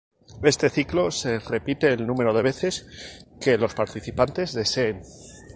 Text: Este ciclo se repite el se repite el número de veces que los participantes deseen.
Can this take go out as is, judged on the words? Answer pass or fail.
fail